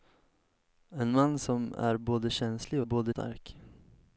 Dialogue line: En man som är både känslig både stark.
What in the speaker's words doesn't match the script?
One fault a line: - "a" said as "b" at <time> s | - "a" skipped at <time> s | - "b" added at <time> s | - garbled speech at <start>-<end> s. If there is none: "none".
none